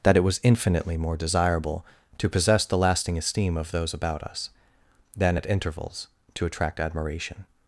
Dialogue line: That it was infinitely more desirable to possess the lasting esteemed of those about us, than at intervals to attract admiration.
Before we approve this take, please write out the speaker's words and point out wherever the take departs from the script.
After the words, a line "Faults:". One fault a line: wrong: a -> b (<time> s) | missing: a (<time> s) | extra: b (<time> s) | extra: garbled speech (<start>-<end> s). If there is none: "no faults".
That it was infinitely more desirable to possess the lasting esteem of those about us, than at intervals to attract admiration.
Faults:
wrong: esteemed -> esteem (3.2 s)